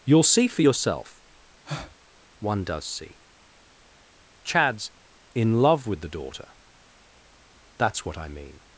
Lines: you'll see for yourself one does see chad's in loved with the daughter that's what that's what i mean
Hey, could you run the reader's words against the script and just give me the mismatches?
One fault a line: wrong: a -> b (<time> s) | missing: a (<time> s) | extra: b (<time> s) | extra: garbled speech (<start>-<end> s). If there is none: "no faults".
wrong: loved -> love (5.6 s)
missing: that's what (8.2 s)